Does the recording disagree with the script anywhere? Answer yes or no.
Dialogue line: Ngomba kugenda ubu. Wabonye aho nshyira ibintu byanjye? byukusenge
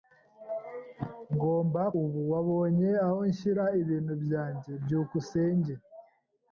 yes